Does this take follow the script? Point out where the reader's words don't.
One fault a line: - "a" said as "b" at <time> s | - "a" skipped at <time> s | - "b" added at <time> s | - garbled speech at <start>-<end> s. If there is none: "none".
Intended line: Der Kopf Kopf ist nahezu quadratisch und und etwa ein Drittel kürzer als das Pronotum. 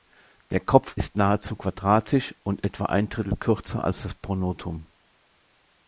- "Kopf" skipped at 1.0 s
- "und" skipped at 2.6 s